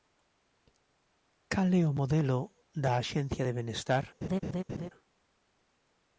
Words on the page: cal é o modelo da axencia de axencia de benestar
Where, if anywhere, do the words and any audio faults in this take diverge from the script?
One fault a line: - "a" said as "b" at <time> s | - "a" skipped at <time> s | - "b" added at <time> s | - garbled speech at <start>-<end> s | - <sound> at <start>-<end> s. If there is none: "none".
- "axencia de" skipped at 3.5 s
- laugh at 4.2-4.9 s